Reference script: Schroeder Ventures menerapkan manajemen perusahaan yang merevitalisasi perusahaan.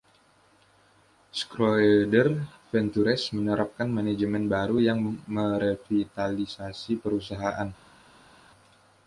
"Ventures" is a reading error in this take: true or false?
false